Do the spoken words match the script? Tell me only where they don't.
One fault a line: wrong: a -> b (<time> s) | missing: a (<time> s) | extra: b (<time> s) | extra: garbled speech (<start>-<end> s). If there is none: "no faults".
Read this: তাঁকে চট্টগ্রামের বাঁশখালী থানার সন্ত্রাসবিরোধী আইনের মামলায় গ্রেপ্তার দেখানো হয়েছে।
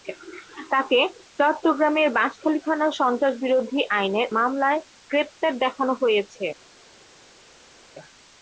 no faults